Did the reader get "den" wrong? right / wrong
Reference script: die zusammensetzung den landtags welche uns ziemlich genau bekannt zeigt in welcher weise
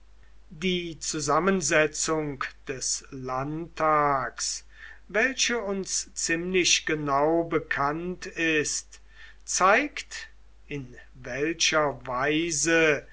wrong